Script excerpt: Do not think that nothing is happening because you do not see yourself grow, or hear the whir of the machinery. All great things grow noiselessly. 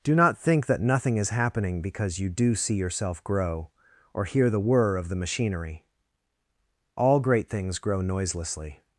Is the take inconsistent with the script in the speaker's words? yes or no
yes